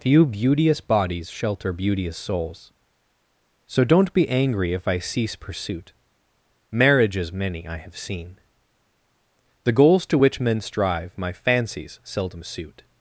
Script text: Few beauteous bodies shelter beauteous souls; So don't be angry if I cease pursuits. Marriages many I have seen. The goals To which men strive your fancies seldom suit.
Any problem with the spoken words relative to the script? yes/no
yes